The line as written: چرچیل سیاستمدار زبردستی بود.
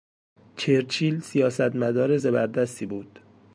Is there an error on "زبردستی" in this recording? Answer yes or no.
no